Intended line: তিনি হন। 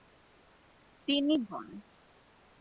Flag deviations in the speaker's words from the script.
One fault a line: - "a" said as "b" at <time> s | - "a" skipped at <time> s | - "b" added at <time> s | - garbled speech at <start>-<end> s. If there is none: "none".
none